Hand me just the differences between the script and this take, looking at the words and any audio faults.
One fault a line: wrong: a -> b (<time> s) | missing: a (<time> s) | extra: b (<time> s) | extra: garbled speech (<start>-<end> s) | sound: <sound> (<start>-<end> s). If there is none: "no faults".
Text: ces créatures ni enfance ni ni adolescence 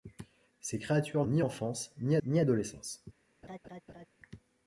sound: laugh (3.4-4.1 s)